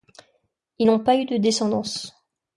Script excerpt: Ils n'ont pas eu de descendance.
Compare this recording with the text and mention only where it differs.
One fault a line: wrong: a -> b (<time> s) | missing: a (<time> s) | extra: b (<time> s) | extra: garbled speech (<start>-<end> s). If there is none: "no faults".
no faults